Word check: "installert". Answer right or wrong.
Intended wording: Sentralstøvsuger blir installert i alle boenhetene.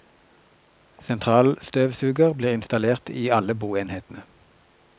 right